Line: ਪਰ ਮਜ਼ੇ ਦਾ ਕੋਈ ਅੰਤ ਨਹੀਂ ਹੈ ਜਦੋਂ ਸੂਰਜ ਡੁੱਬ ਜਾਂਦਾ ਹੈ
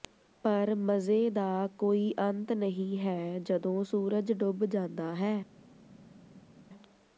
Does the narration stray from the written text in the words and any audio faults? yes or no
no